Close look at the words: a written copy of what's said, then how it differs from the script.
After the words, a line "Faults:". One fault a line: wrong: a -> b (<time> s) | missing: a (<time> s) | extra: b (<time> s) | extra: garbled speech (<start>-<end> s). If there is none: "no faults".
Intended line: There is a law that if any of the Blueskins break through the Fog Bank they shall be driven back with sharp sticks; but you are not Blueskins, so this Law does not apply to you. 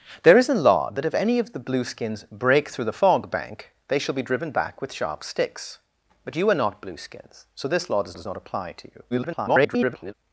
There is a law that if any of the Blueskins break through the Fog Bank they shall be driven back with sharp sticks; but you are not Blueskins, so this Law does does not apply to you. [garbled]
Faults:
extra: does (8.1 s)
extra: garbled speech (9.1-10.1 s)